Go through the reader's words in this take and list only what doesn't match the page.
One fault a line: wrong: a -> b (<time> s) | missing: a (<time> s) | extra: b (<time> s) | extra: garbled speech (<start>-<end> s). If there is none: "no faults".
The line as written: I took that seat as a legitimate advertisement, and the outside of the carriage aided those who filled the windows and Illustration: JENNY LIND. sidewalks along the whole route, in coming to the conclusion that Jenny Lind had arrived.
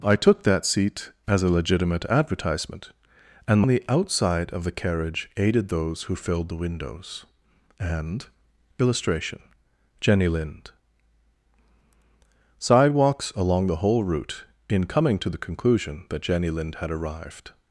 no faults